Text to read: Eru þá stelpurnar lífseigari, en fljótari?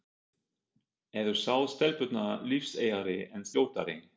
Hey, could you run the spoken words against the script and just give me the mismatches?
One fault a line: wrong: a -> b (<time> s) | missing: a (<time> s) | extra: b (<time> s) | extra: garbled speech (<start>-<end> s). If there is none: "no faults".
no faults